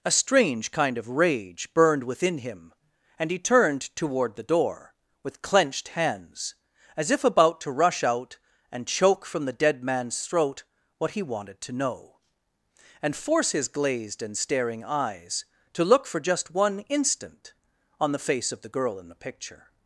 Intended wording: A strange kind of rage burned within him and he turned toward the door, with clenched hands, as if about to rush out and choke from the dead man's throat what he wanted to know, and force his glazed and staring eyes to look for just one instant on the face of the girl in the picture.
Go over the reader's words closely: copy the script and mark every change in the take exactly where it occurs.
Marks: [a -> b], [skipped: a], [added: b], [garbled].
A strange kind of rage burned within him and he turned toward the door, with clenched hands, as if about to rush out and choke from the dead man's throat what he wanted to know, and force his glazed and staring eyes to look for just one instant on the face of the girl in the picture.